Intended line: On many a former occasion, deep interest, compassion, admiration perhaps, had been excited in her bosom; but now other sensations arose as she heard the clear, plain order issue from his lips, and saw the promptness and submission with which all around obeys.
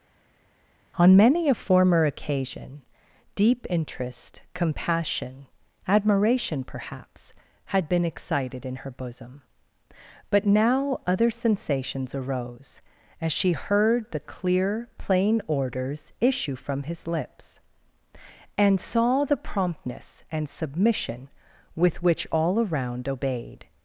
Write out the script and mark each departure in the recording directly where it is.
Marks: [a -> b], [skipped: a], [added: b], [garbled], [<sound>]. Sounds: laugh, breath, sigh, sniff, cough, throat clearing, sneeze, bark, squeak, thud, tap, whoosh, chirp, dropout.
On many a former occasion, deep interest, compassion, admiration perhaps, had been excited in her bosom; but now other sensations arose as she heard the clear, plain [order -> orders] issue from his lips, and saw the promptness and submission with which all around [obeys. -> obeyed]